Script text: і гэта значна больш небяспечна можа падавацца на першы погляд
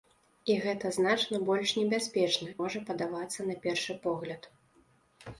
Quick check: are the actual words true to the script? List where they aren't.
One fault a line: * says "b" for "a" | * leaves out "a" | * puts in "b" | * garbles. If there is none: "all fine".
all fine